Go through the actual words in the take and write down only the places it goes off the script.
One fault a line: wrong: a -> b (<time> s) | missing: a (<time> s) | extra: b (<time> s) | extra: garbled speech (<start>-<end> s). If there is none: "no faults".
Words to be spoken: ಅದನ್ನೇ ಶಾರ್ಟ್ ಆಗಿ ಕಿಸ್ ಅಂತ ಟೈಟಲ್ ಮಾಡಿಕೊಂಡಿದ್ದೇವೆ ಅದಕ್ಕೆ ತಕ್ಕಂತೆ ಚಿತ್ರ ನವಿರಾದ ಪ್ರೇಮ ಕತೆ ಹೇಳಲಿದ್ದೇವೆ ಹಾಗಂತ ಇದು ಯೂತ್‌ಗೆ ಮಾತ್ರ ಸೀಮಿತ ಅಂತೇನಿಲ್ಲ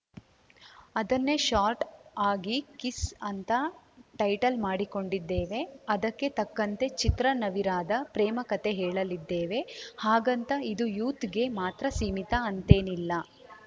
no faults